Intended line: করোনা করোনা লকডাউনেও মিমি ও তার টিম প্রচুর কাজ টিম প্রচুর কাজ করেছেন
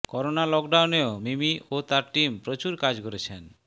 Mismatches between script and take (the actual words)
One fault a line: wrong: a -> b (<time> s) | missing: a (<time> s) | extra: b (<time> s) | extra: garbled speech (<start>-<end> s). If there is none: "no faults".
missing: করোনা (0.4 s)
missing: টিম প্রচুর কাজ (2.9 s)